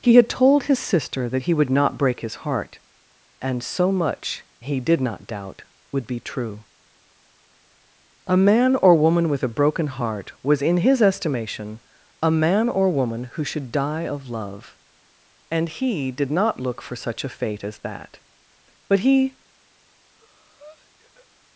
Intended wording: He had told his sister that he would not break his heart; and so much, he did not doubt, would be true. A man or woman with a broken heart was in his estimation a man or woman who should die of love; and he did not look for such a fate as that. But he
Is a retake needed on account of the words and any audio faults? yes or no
yes